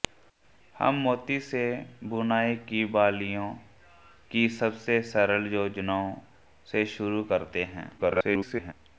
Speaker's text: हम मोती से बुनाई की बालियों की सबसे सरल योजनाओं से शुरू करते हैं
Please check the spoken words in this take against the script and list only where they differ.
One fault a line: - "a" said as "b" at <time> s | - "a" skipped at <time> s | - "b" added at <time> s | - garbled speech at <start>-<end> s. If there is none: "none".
- garbled speech at 8.0-8.7 s